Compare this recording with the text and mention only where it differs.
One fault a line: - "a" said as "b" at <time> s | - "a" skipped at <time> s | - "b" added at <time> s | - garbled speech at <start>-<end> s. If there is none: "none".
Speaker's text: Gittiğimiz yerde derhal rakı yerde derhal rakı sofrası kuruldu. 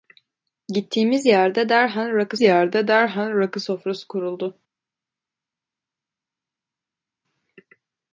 none